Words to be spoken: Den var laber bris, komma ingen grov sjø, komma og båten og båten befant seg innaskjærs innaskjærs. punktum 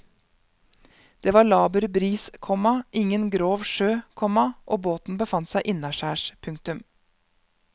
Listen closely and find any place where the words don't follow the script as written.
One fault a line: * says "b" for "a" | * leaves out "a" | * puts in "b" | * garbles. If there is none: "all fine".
* says "Det" for "Den"
* leaves out "og båten"
* leaves out "innaskjærs"